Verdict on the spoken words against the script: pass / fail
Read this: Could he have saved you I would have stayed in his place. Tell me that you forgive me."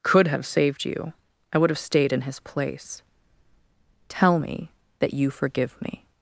fail